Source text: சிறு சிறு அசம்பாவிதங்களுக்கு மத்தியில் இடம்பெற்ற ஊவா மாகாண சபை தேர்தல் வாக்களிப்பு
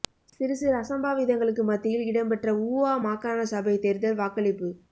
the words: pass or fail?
pass